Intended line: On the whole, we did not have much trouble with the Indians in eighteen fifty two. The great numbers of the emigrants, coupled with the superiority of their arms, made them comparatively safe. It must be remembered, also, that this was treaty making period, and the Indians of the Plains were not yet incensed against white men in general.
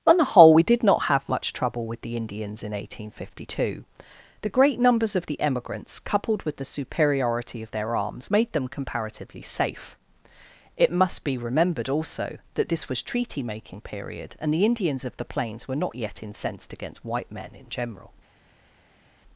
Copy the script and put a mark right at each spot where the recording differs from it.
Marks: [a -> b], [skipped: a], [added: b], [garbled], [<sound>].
On the whole, we did not have much trouble with the Indians in eighteen fifty two. The great numbers of the emigrants, coupled with the superiority of their arms, made them comparatively safe. It must be remembered, also, that this was treaty making period, and the Indians of the Plains were not yet incensed against white men in general.